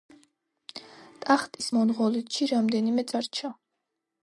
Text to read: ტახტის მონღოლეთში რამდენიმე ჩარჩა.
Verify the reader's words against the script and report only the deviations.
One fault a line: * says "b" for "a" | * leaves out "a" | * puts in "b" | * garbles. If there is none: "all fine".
all fine